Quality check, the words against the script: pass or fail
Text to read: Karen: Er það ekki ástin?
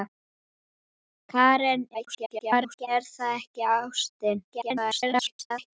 fail